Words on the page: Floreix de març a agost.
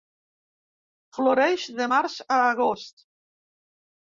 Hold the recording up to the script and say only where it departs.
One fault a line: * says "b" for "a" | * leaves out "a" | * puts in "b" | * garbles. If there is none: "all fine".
all fine